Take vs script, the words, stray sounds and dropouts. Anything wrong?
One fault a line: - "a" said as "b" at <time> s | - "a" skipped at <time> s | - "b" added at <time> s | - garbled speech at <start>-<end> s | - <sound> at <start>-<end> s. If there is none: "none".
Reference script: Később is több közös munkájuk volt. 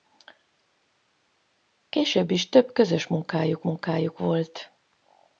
- "munkájuk" added at 3.6 s